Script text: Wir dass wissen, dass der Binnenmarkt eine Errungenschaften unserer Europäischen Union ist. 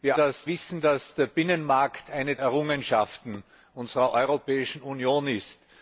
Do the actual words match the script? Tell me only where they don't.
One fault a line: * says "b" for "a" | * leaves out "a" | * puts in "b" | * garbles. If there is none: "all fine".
all fine